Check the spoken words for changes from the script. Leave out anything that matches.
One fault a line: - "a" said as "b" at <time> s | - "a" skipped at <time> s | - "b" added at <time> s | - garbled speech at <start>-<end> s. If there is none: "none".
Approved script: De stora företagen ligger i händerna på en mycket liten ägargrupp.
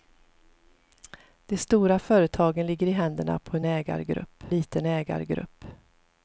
- "mycket" said as "ägargrupp" at 3.6 s